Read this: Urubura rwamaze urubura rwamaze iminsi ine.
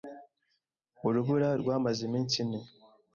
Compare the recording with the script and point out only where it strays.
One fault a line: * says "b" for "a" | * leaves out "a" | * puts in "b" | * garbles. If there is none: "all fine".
* leaves out "urubura rwamaze"